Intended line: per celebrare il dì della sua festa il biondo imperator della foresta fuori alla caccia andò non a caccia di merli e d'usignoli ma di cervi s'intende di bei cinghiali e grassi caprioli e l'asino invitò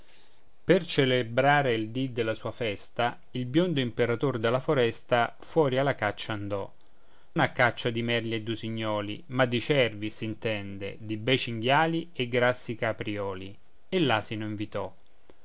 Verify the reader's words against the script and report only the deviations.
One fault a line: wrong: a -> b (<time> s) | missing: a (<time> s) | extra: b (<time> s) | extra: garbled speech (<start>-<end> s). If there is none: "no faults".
missing: non (6.7 s)